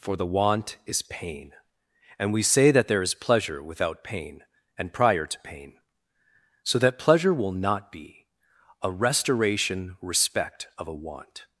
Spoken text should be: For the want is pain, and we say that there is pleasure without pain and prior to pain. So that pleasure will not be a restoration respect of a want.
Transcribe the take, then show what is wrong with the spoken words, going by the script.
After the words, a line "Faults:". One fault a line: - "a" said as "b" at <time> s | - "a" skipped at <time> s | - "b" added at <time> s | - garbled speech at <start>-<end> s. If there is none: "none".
For the want is pain, and we say that there is pleasure without pain and prior to pain. So that pleasure will not be a restoration respect of a want.
Faults:
none